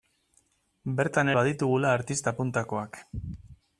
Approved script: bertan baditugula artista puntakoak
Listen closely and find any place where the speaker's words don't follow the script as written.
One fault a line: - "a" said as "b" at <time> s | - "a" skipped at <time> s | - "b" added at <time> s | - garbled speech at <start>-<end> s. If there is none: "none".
none